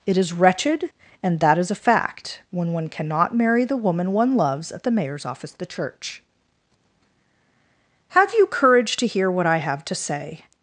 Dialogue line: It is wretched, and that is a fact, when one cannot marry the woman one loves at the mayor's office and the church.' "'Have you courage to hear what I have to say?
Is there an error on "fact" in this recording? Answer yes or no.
no